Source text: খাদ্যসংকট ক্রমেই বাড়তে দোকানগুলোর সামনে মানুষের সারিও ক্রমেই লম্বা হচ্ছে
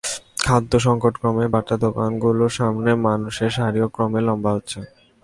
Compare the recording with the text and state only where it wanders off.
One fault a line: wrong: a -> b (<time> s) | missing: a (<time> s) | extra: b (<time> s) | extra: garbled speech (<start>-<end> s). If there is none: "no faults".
no faults